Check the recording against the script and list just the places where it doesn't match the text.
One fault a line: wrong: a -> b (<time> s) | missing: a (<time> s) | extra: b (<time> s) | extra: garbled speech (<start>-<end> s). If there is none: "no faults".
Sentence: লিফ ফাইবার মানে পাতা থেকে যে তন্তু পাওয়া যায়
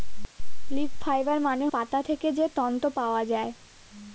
no faults